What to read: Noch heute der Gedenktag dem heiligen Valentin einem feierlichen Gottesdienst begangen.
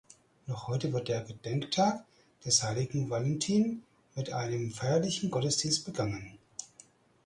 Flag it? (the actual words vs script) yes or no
yes